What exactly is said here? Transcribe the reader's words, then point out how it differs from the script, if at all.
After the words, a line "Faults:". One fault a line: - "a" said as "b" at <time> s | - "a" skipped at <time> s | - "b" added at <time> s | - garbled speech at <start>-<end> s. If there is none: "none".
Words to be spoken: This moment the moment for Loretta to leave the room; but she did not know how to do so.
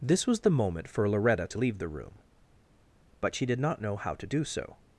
This was the moment for Loretta to leave the room; but she did not know how to do so.
Faults:
- "moment" said as "was" at 0.2 s